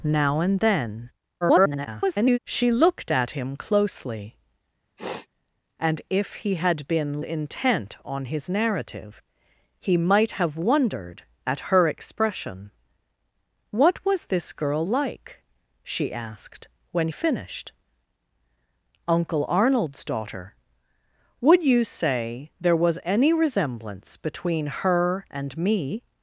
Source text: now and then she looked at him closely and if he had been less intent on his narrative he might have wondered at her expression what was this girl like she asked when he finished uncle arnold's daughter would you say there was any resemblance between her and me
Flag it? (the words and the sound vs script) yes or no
yes